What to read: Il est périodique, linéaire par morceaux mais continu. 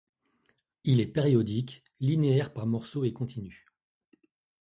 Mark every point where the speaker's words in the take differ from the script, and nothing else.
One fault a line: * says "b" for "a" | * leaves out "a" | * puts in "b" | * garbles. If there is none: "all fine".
* says "et" for "mais"